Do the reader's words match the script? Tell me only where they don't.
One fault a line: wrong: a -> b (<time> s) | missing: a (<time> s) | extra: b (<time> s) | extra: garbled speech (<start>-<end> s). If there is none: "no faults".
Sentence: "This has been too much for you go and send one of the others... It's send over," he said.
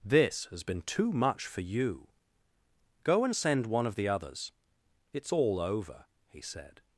wrong: send -> all (5.3 s)